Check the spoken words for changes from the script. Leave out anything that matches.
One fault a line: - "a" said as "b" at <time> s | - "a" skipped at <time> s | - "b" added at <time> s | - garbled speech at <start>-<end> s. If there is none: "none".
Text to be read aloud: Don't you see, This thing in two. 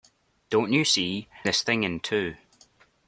none